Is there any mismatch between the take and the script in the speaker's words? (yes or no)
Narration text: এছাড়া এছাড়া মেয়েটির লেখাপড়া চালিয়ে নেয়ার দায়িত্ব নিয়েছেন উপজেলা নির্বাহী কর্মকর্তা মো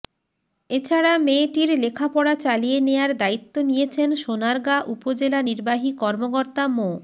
yes